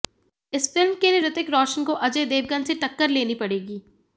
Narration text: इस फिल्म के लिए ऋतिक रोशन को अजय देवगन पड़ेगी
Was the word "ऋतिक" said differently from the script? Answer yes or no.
no